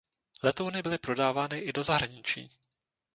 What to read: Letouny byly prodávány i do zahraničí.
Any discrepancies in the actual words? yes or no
no